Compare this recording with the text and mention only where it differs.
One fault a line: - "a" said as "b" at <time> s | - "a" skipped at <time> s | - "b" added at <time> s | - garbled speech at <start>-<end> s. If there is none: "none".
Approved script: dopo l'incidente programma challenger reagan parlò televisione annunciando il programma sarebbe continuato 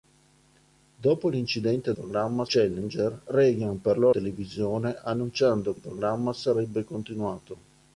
none